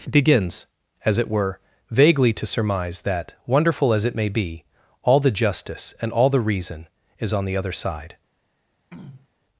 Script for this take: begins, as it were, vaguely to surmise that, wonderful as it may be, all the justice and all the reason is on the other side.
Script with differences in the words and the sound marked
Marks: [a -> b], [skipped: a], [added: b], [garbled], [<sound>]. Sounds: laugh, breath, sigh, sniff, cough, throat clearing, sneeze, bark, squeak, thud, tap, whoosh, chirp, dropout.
begins, as it were, vaguely to surmise that, wonderful as it may be, all the justice and all the reason is on the other side. [throat clearing]